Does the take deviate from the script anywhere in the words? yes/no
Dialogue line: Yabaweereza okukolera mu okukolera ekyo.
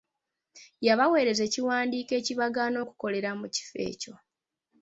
yes